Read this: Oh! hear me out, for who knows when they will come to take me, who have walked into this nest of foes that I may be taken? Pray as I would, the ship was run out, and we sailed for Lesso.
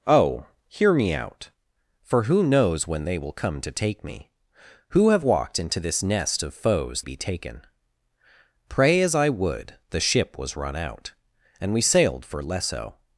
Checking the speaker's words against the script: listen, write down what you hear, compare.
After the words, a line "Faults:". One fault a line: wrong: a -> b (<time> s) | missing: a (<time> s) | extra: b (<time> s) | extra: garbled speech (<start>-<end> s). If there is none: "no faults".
Oh! hear me out, for who knows when they will come to take me, who have walked into this nest of foes be taken? Pray as I would, the ship was run out, and we sailed for Lesso.
Faults:
missing: that I may (7.0 s)